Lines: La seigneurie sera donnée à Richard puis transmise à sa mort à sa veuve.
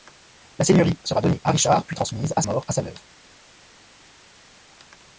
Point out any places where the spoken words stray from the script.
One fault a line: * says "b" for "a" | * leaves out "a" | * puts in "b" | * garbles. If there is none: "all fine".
* leaves out "sa"